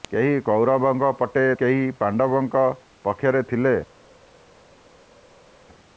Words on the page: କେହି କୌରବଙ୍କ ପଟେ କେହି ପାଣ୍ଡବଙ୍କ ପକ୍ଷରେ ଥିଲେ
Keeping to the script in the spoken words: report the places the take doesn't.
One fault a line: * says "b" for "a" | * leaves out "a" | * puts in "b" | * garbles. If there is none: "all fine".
all fine